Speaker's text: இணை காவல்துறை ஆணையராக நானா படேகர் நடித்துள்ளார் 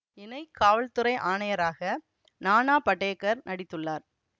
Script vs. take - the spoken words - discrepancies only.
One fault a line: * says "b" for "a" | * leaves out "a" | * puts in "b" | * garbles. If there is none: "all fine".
all fine